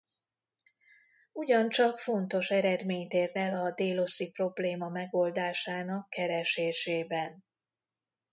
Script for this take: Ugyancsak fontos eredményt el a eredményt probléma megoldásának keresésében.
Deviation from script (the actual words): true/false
true